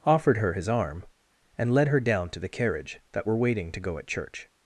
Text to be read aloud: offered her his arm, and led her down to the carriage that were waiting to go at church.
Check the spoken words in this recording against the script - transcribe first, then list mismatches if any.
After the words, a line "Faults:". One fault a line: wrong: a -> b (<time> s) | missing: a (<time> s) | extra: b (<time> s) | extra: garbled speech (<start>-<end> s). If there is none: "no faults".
offered her his arm, and led her down to the carriage that were waiting to go at church.
Faults:
no faults